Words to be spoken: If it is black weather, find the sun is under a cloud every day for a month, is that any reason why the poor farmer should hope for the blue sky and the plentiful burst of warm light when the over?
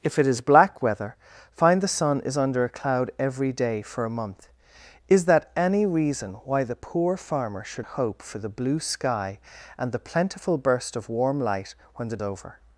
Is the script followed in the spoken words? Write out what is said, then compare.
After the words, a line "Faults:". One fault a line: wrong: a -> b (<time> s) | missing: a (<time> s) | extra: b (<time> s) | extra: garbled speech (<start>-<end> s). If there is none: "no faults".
If it is black weather, find the sun is under a cloud every day for a month, is that any reason why the poor farmer should hope for the blue sky and the plentiful burst of warm light when the over?
Faults:
no faults